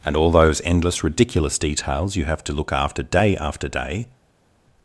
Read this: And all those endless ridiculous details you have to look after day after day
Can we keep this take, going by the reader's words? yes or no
yes